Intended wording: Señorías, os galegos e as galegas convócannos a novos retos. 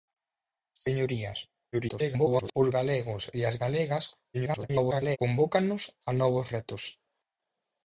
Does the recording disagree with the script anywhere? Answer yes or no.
yes